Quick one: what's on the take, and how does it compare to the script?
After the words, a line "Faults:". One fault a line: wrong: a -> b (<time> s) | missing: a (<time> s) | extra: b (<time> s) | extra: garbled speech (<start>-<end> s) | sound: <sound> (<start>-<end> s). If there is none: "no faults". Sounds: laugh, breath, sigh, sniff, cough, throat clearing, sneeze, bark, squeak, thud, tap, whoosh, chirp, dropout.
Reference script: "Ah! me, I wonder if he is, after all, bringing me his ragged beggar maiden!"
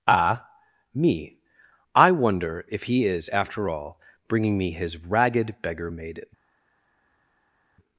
"Ah! me, I wonder if he is, after all, bringing me his ragged beggar maiden!"
Faults:
no faults